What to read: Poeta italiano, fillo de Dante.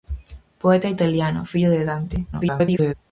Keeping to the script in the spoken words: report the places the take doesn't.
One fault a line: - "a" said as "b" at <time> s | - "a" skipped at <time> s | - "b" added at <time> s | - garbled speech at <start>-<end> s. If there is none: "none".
- garbled speech at 2.3-2.9 s